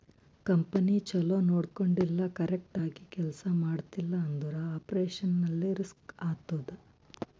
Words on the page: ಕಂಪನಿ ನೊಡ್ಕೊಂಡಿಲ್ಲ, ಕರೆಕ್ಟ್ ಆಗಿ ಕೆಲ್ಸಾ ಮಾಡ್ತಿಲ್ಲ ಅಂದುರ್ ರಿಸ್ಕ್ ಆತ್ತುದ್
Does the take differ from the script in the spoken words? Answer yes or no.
yes